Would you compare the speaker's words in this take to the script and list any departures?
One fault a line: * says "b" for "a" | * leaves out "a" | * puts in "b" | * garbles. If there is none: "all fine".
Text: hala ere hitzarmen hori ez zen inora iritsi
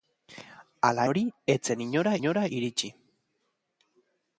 * leaves out "ere hitzarmen"
* puts in "inora"